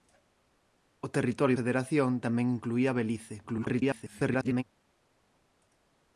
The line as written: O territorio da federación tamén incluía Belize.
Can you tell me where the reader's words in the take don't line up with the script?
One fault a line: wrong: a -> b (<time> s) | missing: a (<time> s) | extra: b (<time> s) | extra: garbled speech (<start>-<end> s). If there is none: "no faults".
missing: da (1.6 s)
extra: garbled speech (3.4-4.6 s)